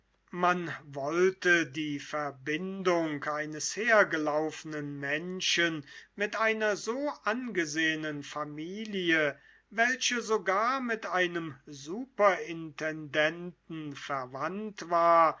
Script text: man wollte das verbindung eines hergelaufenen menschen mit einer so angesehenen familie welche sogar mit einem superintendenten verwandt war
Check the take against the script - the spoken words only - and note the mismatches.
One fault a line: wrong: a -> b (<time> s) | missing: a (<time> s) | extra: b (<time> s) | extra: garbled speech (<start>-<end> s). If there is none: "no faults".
wrong: das -> die (1.7 s)